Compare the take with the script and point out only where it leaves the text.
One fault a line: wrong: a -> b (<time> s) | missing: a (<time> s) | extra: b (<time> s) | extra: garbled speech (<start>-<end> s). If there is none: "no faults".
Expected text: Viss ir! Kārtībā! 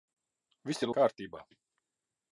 no faults